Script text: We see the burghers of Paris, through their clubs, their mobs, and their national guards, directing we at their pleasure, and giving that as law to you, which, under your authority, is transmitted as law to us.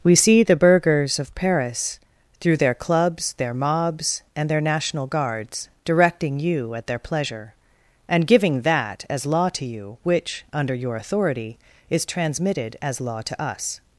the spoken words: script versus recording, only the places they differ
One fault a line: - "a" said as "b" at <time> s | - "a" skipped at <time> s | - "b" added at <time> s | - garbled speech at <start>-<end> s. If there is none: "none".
- "we" said as "you" at 6.4 s